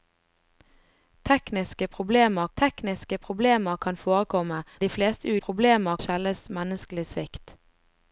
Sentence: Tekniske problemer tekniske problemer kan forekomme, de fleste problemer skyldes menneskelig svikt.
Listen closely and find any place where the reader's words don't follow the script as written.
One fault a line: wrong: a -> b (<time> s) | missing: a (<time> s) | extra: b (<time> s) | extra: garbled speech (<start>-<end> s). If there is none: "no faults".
no faults